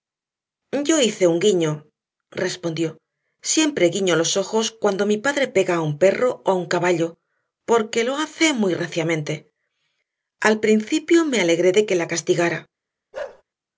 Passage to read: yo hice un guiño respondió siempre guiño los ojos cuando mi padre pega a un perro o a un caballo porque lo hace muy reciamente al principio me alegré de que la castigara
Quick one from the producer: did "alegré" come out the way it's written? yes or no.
yes